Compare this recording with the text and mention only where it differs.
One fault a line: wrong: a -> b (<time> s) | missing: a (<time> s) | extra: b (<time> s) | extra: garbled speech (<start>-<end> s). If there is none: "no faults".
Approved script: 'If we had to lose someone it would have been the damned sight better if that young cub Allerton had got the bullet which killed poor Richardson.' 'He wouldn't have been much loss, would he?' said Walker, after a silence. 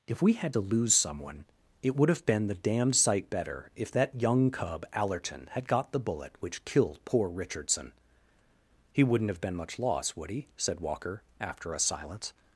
no faults